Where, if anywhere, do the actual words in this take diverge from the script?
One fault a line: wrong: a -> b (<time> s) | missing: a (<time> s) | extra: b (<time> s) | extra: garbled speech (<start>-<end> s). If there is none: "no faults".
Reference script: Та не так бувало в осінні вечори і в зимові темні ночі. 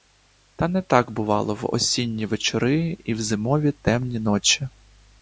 no faults